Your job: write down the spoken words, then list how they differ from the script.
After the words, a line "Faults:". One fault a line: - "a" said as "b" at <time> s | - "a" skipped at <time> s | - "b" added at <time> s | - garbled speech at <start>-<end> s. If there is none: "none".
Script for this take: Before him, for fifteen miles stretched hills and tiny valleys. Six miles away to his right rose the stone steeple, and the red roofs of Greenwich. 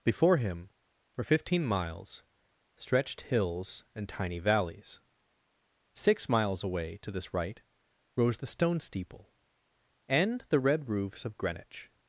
Before him, for fifteen miles stretched hills and tiny valleys. Six miles away to this right rose the stone steeple, and the red roofs of Greenwich.
Faults:
- "his" said as "this" at 7.1 s